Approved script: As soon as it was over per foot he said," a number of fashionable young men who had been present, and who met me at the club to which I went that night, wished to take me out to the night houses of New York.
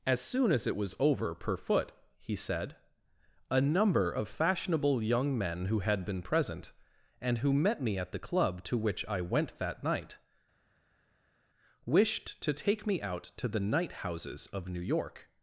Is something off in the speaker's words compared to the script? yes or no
no